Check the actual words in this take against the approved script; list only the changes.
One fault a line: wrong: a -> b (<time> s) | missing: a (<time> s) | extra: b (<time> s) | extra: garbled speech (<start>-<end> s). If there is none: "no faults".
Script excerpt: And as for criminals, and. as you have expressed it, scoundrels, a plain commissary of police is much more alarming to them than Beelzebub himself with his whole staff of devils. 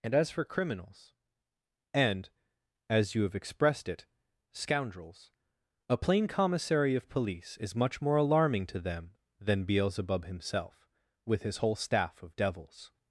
no faults